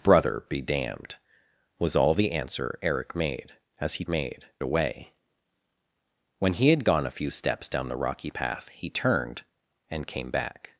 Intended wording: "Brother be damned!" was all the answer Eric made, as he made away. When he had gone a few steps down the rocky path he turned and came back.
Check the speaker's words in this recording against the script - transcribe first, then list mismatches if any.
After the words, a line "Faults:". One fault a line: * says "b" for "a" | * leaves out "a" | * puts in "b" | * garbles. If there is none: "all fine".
"Brother be damned!" was all the answer Eric made, as he made away. When he had gone a few steps down the rocky path he turned and came back.
Faults:
all fine